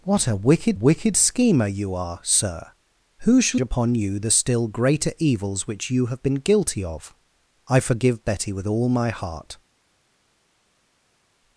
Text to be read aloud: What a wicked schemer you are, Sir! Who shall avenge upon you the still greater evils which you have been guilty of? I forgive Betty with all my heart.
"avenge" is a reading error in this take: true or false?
true